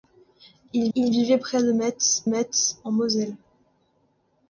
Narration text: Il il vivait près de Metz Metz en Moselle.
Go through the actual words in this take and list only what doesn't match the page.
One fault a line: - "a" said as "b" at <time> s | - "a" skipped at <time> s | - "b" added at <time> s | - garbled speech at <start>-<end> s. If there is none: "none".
none